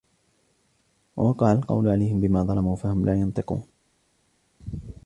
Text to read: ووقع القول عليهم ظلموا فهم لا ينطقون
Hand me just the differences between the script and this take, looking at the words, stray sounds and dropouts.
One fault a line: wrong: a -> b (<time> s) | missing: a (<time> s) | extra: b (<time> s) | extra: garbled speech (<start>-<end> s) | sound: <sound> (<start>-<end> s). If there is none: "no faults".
extra: بما (2.2 s)